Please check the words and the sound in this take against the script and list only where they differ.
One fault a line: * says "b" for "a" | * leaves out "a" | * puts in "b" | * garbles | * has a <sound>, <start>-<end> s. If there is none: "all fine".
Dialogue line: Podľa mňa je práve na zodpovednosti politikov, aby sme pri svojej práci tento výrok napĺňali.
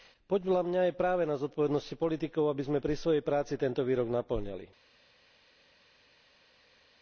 all fine